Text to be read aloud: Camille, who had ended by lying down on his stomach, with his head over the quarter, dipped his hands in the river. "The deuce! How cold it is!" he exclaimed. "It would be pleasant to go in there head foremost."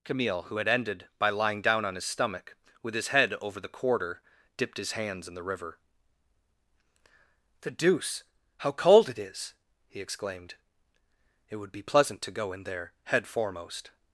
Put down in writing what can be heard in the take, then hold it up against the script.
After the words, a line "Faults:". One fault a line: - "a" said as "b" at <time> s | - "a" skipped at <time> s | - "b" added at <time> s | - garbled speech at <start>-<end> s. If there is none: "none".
Camille, who had ended by lying down on his stomach, with his head over the quarter, dipped his hands in the river. "The deuce! How cold it is!" he exclaimed. "It would be pleasant to go in there head foremost."
Faults:
none